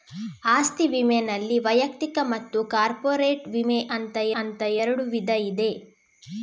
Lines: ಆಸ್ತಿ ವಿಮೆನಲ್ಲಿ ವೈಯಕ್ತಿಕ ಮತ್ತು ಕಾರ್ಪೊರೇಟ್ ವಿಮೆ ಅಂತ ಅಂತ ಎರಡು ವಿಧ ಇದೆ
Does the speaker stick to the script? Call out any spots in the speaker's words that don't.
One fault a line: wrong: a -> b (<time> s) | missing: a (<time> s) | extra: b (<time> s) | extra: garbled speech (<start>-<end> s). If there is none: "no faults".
no faults